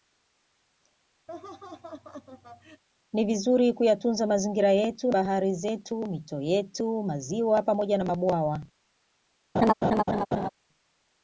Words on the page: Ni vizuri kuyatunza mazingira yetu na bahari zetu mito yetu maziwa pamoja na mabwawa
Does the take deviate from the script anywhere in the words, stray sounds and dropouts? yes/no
yes